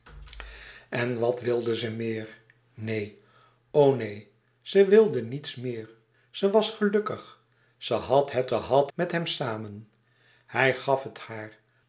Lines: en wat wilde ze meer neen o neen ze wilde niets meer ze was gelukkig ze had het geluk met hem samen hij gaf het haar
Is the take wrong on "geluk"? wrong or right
wrong